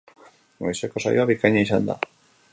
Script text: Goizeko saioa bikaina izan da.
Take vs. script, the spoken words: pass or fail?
pass